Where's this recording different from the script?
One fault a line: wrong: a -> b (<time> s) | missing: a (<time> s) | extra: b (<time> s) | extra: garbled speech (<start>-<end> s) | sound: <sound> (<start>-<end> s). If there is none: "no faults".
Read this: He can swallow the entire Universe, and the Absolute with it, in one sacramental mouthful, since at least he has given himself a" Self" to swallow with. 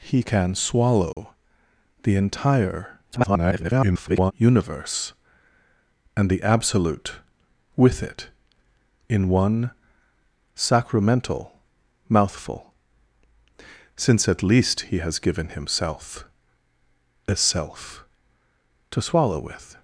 sound: dropout (1.1-1.2 s)
extra: garbled speech (3.1-4.3 s)